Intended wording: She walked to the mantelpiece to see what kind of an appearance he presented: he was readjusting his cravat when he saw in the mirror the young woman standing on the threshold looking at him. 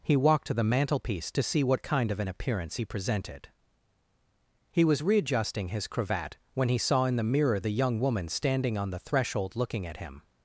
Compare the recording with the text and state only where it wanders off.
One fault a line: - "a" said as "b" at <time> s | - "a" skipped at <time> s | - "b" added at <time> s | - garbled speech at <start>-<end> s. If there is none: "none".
- "She" said as "He" at 0.0 s